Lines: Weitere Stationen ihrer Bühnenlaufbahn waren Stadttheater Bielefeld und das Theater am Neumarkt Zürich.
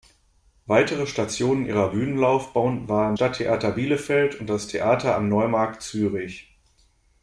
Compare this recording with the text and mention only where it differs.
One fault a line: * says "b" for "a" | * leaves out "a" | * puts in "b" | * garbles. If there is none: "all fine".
all fine